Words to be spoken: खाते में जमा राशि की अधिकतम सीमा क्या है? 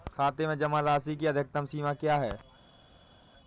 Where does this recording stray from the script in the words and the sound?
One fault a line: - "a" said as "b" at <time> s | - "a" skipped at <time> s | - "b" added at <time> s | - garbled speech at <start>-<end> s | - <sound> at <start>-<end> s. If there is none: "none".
none